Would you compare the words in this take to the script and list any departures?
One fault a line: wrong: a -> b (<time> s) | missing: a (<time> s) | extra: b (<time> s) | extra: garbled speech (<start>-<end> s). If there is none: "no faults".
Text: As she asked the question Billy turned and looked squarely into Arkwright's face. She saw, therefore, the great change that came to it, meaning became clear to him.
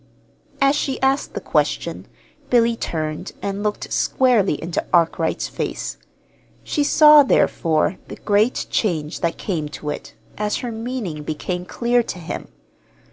extra: as her (10.4 s)